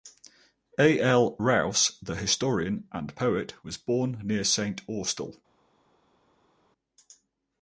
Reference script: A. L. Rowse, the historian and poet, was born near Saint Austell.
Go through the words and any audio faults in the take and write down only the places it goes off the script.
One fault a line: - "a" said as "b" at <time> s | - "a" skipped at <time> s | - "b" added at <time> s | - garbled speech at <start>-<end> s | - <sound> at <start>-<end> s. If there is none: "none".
none